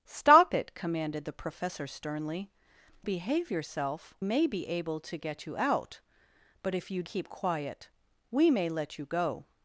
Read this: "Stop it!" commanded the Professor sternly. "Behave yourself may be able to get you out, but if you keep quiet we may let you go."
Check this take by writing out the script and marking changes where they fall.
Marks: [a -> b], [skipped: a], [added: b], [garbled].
"Stop it!" commanded the Professor sternly. "Behave yourself may be able to get you out, but if you keep quiet we may let you go."